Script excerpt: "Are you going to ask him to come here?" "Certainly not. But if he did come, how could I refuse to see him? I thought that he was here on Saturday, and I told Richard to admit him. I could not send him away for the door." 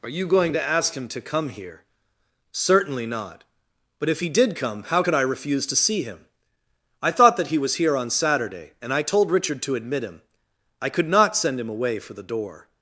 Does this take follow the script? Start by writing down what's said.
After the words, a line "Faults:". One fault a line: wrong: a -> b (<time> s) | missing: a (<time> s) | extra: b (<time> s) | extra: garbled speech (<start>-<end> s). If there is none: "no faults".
"Are you going to ask him to come here?" "Certainly not. But if he did come, how could I refuse to see him? I thought that he was here on Saturday, and I told Richard to admit him. I could not send him away for the door."
Faults:
no faults